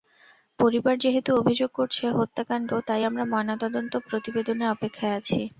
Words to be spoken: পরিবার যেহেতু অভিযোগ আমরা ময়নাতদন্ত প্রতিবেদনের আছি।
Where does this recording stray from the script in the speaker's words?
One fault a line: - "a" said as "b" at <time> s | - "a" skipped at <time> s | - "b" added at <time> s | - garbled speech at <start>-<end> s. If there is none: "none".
- "করছে হত্যাকাণ্ড তাই" added at 1.7 s
- "অপেক্ষায়" added at 4.7 s